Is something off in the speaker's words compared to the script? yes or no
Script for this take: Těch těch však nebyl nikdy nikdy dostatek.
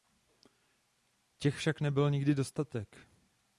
yes